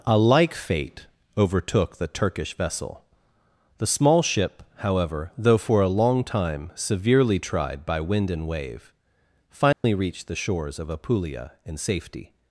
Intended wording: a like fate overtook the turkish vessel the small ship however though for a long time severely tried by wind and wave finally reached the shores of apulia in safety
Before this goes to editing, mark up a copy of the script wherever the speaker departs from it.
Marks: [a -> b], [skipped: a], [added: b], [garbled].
a like fate overtook the turkish vessel the small ship however though for a long time severely tried by wind and wave finally reached the shores of apulia in safety